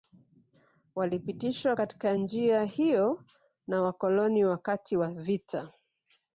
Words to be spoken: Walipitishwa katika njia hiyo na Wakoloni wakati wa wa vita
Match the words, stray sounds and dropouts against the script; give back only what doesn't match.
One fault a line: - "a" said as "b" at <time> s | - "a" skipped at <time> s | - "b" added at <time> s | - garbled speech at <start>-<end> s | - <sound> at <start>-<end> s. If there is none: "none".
- "wa" skipped at 5.1 s